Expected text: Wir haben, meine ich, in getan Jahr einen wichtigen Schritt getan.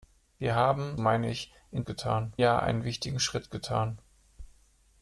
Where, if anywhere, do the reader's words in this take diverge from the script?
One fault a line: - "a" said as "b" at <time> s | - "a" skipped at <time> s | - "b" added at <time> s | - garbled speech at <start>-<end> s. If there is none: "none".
none